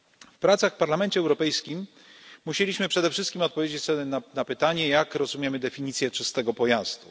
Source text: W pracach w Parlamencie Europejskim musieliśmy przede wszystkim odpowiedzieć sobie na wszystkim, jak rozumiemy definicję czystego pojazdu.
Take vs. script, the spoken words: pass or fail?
fail